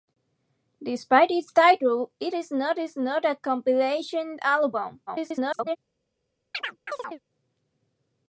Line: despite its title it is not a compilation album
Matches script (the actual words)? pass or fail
fail